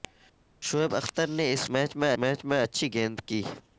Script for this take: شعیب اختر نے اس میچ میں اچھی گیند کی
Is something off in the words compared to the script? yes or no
yes